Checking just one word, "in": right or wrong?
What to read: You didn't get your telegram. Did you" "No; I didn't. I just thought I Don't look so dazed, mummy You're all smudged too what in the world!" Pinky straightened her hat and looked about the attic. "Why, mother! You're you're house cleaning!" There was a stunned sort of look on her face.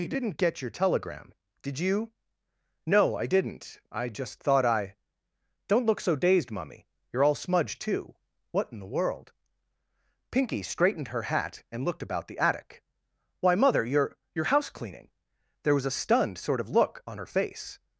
right